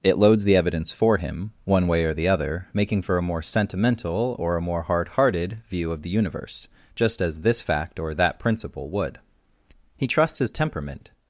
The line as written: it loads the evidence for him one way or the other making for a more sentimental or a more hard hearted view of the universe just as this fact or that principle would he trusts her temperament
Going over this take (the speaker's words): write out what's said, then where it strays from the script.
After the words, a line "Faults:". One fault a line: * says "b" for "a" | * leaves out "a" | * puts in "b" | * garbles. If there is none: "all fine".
it loads the evidence for him one way or the other making for a more sentimental or a more hard hearted view of the universe just as this fact or that principle would he trusts his temperament
Faults:
* says "his" for "her"